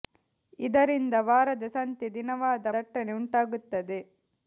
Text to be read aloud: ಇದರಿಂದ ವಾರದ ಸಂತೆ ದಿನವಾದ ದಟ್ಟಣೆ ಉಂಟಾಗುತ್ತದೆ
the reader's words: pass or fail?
pass